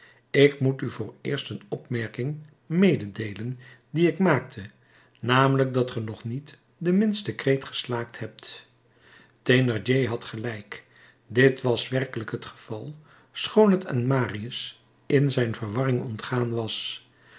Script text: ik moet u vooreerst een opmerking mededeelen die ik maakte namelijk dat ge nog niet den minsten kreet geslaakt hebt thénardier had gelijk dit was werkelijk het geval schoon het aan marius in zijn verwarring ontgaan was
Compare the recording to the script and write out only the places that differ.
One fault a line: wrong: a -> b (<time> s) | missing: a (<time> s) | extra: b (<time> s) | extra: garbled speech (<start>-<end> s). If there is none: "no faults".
no faults